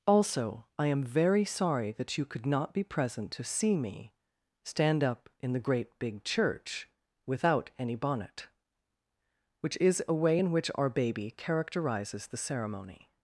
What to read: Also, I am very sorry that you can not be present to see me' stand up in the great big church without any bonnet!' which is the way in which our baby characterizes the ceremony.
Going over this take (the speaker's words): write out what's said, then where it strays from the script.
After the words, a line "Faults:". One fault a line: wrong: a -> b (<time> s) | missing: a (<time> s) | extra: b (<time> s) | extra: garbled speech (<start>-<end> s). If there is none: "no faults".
Also, I am very sorry that you could not be present to see me' stand up in the great big church without any bonnet!' which is a way in which our baby characterizes the ceremony.
Faults:
wrong: can -> could (2.2 s)
wrong: the -> a (10.1 s)